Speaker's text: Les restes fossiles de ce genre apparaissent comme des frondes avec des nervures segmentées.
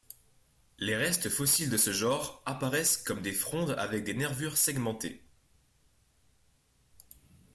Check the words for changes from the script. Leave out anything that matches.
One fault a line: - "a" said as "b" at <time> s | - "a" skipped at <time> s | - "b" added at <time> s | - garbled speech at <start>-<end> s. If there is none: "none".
none